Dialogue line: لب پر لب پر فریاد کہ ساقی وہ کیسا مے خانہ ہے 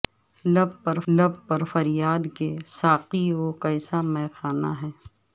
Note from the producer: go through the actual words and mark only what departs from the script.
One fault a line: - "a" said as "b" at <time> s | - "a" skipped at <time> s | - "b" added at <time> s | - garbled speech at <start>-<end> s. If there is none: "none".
none